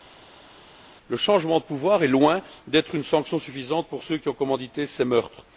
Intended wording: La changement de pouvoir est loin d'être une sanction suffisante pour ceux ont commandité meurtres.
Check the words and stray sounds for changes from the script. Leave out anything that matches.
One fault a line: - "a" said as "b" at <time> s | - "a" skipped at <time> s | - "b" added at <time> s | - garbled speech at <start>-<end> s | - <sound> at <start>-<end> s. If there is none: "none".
- "La" said as "Le" at 1.1 s
- "qui" added at 4.2 s
- "ces" added at 4.9 s